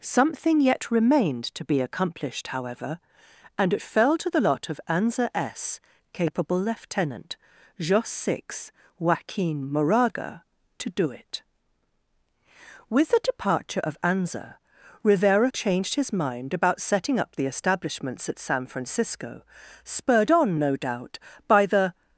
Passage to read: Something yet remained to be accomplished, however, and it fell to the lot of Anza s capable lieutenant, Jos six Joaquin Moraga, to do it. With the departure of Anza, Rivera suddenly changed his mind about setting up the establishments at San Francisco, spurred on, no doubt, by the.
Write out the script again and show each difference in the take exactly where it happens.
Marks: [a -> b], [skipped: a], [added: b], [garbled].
Something yet remained to be accomplished, however, and it fell to the lot of Anza s capable lieutenant, Jos six Joaquin Moraga, to do it. With the departure of Anza, Rivera [skipped: suddenly] changed his mind about setting up the establishments at San Francisco, spurred on, no doubt, by the.